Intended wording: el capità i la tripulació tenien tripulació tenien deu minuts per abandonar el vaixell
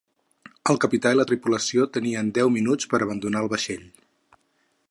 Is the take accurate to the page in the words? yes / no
no